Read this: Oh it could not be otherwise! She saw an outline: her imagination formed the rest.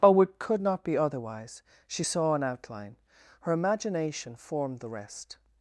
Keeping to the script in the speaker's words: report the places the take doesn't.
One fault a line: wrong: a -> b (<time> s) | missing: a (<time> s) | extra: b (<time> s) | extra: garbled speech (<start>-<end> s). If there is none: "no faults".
no faults